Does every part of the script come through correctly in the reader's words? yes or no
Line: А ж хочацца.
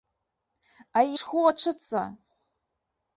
yes